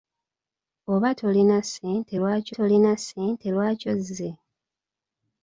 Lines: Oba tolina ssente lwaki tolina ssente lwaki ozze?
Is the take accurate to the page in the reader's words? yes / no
yes